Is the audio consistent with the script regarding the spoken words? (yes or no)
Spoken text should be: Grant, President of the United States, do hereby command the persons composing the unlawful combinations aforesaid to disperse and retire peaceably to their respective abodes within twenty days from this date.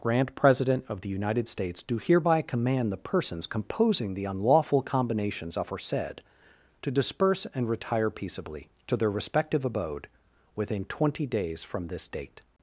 no